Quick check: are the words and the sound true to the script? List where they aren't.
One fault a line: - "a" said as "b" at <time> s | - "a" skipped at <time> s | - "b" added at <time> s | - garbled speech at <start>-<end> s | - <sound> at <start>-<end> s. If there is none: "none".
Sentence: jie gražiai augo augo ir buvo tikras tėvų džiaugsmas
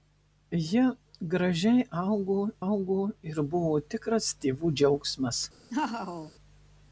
- laugh at 5.7-6.3 s